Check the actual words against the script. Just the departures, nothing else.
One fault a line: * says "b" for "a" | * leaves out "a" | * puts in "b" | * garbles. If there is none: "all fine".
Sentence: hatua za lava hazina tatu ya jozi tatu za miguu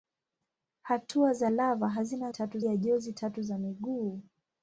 all fine